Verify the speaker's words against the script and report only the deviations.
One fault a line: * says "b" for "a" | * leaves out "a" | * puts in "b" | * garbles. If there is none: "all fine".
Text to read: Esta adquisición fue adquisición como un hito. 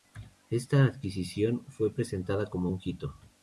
* says "presentada" for "adquisición"